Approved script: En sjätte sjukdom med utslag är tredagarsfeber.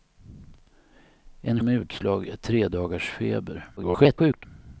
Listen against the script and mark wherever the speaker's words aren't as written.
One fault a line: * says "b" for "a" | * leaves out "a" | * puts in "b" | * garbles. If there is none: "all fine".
* leaves out "sjätte sjukdom"
* garbles